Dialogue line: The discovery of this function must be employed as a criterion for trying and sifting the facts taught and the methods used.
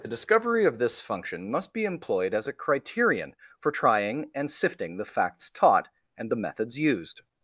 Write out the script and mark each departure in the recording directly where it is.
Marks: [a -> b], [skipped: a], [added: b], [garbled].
The discovery of this function must be employed as a criterion for trying and sifting the facts taught and the methods used.